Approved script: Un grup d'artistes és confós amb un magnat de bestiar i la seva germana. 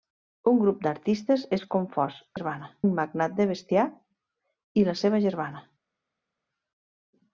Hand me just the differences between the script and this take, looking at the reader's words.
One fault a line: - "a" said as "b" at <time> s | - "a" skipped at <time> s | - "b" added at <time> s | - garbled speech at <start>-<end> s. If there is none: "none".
- "amb" said as "germana" at 2.4 s